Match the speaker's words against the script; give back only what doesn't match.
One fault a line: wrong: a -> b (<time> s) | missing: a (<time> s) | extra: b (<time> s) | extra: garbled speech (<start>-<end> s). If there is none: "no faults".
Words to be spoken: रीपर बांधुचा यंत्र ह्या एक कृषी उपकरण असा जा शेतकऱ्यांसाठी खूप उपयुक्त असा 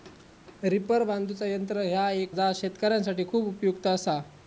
missing: कृषी उपकरण असा (2.4 s)